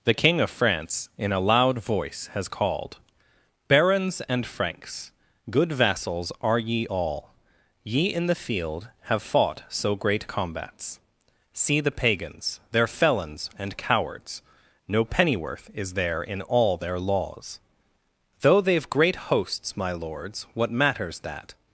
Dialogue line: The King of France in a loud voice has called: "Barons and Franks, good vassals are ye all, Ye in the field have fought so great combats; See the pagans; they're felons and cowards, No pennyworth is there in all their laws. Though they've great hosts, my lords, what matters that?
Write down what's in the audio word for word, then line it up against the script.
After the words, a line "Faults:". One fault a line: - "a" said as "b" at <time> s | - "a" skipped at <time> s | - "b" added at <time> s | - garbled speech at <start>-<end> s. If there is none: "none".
The King of France in a loud voice has called: "Barons and Franks, good vassals are ye all, Ye in the field have fought so great combats; See the pagans; they're felons and cowards, No pennyworth is there in all their laws. Though they've great hosts, my lords, what matters that?
Faults:
none